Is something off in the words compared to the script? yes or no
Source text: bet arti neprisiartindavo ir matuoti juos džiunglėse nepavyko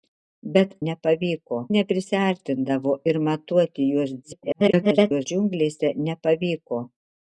yes